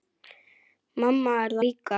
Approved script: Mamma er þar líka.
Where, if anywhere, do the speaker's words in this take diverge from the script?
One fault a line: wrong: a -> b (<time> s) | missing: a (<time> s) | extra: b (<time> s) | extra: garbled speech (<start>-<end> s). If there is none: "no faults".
missing: þar (1.6 s)